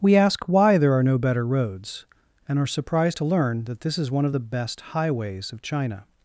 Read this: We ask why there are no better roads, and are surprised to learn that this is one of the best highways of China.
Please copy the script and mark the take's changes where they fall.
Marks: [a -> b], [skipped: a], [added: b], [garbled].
We ask why there are no better roads, and are surprised to learn that this is one of the best highways of China.